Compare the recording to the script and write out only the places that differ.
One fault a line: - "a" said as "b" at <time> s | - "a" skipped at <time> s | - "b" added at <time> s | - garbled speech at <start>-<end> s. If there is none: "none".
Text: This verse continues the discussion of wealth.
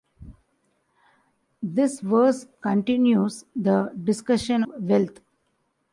- "of" skipped at 4.6 s